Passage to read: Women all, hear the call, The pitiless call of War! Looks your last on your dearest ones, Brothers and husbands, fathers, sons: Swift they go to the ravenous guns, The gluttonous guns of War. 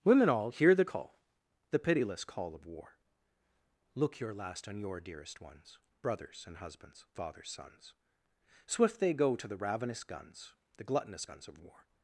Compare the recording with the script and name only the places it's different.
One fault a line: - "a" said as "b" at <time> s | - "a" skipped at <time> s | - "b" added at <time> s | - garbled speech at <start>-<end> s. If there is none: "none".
- "Looks" said as "Look" at 3.9 s